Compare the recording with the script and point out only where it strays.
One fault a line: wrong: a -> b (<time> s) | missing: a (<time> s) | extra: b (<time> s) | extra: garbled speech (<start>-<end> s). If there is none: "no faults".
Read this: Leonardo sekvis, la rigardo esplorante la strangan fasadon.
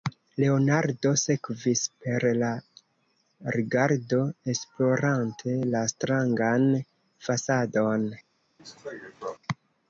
extra: per (2.0 s)